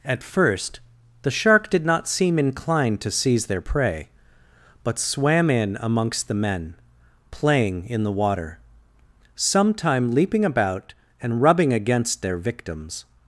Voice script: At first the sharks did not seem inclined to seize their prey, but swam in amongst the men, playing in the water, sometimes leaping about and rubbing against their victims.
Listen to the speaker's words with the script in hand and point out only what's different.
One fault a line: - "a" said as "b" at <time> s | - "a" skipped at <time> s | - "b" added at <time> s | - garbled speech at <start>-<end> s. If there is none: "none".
- "sharks" said as "shark" at 1.3 s
- "sometimes" said as "sometime" at 9.3 s